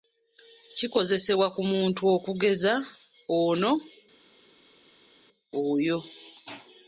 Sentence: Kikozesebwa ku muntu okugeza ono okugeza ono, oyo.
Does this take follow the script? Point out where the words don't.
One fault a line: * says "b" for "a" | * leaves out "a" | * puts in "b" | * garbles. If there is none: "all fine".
* leaves out "okugeza ono"